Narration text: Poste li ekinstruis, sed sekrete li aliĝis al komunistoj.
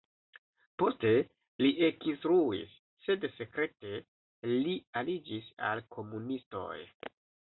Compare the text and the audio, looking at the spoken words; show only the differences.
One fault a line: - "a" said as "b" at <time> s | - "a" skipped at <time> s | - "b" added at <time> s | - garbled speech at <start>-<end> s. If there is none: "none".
none